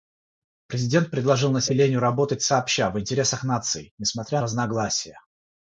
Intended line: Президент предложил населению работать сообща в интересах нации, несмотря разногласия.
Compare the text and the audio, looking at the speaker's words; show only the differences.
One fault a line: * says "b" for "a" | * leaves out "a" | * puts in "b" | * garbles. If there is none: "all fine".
all fine